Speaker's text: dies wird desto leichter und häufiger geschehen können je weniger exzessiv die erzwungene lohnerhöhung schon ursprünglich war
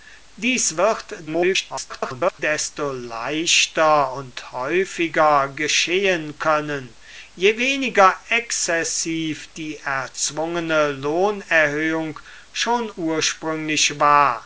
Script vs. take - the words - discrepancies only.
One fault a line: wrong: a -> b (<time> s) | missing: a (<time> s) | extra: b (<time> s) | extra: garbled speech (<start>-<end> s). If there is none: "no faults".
extra: garbled speech (1.3-2.4 s)